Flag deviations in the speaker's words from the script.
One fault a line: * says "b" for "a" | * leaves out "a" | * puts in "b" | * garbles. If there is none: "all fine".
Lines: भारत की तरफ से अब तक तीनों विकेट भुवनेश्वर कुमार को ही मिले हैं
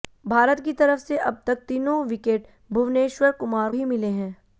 * leaves out "को"